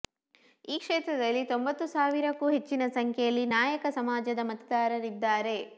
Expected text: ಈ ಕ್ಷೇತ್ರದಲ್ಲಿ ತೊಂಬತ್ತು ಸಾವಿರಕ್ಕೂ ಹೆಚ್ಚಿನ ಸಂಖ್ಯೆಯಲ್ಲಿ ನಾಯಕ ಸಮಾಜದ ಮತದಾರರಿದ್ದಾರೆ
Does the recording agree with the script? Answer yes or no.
yes